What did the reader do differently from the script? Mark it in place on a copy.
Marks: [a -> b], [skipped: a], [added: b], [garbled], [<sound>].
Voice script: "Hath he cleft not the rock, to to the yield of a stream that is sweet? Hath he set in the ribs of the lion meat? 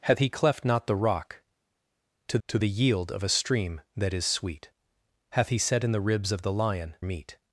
"Hath he cleft not the rock, to to the yield of a stream that is sweet? Hath he set in the ribs of the lion meat?